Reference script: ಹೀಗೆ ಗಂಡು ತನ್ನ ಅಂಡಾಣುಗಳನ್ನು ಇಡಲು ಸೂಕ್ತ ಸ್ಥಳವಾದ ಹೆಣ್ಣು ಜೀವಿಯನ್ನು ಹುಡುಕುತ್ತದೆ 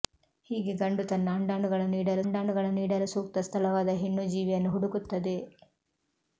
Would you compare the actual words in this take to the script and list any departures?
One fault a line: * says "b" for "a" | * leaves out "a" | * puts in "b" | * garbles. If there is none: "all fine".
* puts in "ಅಂಡಾಣುಗಳನ್ನು ಇಡಲು"